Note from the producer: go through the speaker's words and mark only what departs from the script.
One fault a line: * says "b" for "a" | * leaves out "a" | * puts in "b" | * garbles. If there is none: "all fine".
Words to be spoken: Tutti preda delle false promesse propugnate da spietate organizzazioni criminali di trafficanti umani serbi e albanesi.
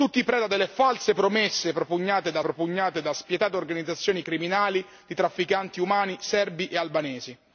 * puts in "propugnate da"